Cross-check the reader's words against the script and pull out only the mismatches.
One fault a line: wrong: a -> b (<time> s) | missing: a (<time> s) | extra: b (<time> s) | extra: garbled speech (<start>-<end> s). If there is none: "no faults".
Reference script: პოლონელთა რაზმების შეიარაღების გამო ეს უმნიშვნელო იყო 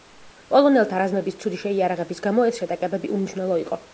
extra: ცუდი (1.4 s)
extra: შეტაკებები (2.6 s)